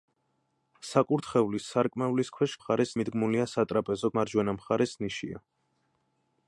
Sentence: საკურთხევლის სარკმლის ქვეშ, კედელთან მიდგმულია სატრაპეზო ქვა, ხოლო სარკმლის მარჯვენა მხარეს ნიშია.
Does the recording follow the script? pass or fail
fail